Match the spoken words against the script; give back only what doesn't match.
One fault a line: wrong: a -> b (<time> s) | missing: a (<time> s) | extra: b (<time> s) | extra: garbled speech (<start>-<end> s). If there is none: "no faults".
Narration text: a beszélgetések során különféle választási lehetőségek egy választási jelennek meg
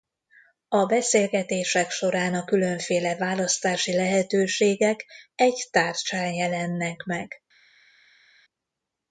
extra: a (2.3 s)
wrong: választási -> tárcsán (5.7 s)